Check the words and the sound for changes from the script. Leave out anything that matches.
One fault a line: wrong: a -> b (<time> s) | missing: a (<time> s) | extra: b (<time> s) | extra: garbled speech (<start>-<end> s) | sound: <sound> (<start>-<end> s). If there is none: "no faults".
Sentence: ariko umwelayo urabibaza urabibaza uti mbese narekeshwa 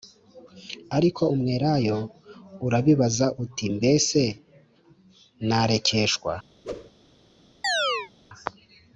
missing: urabibaza (3.3 s)
sound: whoosh (6.6-6.9 s)
sound: chirp (7.6-8.1 s)